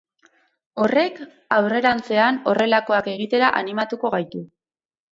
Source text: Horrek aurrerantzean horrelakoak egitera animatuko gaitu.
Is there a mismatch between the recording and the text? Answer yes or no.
no